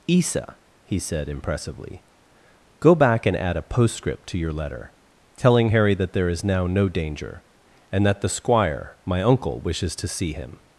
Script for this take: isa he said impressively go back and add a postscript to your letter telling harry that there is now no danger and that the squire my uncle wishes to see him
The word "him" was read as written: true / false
true